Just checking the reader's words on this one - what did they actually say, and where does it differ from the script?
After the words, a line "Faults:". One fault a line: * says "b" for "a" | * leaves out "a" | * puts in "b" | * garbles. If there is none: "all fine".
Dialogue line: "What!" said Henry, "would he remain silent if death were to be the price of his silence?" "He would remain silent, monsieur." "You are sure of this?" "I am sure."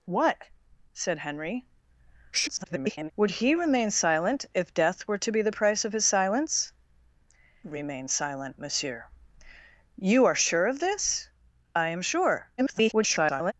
"What!" said Henry, [garbled] "would he remain silent if death were to be the price of his silence?" "Remain silent, monsieur." "You are sure of this?" "I am sure." [garbled]
Faults:
* garbles
* leaves out "He would"
* garbles